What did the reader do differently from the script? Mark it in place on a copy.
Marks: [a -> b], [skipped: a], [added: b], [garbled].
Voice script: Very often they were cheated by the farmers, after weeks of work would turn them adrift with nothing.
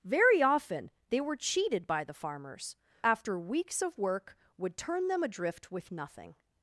Very often they were cheated by the farmers, after weeks of work would turn them adrift with nothing.